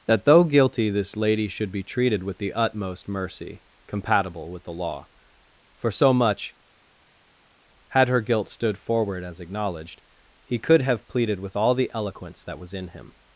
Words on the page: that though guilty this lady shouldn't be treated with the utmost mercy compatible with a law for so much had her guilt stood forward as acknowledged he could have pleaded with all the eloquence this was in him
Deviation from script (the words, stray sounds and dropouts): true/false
true